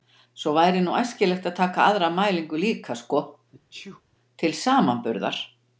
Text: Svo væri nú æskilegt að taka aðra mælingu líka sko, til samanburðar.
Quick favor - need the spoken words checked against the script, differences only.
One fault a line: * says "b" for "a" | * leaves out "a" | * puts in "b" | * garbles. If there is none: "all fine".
all fine